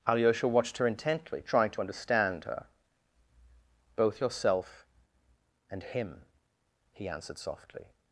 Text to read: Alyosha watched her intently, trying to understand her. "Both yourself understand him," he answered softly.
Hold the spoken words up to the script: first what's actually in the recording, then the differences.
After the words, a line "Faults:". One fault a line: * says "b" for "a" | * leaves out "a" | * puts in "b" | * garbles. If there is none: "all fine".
Alyosha watched her intently, trying to understand her. "Both yourself and him," he answered softly.
Faults:
* says "and" for "understand"